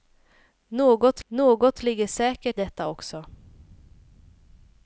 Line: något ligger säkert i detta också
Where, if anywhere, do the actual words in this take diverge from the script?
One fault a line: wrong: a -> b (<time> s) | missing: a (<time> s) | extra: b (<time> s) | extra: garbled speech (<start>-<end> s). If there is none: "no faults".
extra: något (1.3 s)
missing: i (2.6 s)